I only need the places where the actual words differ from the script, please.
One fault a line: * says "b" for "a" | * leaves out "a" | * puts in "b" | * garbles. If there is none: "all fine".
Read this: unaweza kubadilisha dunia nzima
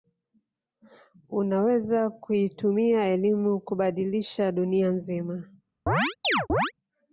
* puts in "kuitumia elimu"